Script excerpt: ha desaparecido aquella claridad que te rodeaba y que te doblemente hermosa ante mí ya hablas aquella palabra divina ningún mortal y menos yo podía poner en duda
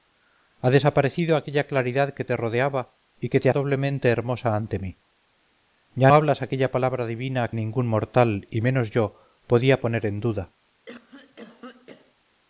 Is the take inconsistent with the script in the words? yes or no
no